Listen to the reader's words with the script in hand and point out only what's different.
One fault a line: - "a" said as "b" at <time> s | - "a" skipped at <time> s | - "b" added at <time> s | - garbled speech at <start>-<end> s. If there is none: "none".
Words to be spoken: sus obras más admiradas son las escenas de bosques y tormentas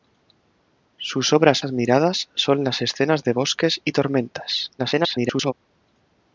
- "más" skipped at 1.6 s
- garbled speech at 4.8-5.5 s